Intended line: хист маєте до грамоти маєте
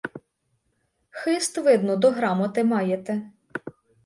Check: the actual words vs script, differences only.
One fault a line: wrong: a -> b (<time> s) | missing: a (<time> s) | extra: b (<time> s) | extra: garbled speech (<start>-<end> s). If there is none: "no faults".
wrong: маєте -> видно (1.6 s)